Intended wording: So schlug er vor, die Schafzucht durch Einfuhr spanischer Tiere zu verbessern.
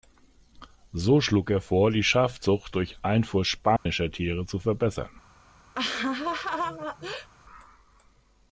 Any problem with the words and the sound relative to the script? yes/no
yes